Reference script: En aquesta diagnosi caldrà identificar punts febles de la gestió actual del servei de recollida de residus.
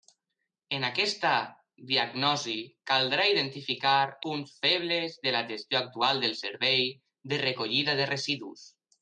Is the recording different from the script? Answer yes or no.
no